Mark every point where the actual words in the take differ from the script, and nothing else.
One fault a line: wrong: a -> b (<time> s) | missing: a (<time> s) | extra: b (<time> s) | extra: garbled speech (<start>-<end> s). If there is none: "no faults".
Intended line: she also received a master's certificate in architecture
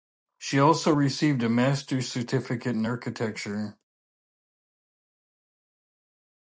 no faults